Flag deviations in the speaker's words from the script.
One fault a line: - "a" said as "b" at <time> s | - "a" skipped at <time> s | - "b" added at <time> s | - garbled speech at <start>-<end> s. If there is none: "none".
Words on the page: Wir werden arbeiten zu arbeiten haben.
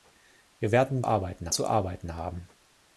none